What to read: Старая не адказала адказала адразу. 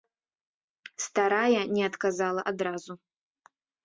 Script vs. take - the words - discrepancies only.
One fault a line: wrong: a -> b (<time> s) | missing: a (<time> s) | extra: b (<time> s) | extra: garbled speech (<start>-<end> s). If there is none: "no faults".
missing: адказала (2.4 s)